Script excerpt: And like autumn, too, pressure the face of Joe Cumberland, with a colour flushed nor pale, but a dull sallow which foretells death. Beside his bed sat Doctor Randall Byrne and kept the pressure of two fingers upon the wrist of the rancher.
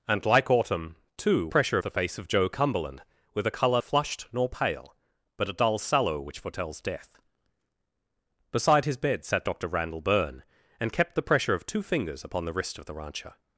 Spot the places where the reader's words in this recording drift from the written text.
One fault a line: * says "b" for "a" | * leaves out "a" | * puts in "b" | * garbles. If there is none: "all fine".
all fine